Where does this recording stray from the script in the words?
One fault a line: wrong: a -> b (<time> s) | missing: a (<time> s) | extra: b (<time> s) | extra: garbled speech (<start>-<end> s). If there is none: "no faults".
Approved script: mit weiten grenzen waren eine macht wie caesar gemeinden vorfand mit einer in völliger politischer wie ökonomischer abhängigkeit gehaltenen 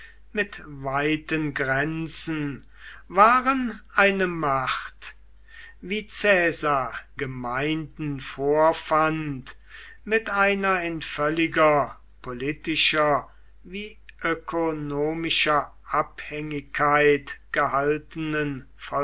no faults